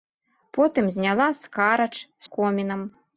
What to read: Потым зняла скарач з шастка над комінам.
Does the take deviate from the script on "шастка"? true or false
true